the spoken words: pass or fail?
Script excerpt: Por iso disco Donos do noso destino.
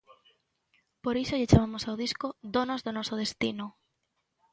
fail